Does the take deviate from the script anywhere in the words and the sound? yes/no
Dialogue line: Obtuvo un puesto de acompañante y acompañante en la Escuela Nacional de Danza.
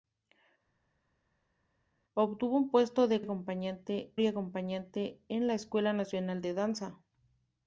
no